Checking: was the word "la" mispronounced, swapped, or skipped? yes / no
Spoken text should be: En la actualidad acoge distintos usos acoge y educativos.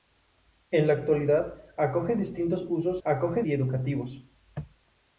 no